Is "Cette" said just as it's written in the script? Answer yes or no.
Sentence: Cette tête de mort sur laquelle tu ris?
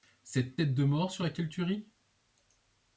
yes